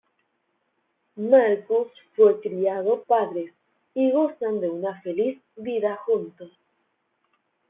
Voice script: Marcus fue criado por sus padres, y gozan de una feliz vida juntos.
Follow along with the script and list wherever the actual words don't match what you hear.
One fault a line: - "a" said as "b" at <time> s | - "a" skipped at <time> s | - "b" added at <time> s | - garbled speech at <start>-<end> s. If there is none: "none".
- "por sus" skipped at 3.0 s